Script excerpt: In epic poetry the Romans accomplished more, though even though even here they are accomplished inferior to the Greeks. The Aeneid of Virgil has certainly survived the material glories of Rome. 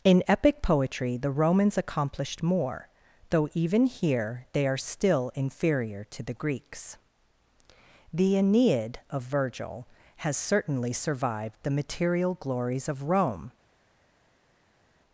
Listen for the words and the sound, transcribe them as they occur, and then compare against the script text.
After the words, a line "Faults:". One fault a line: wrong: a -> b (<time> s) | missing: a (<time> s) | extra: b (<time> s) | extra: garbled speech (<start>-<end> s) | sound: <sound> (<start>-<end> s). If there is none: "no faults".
In epic poetry the Romans accomplished more, though even here they are still inferior to the Greeks. The Aeneid of Virgil has certainly survived the material glories of Rome.
Faults:
missing: though even (3.9 s)
wrong: accomplished -> still (4.8 s)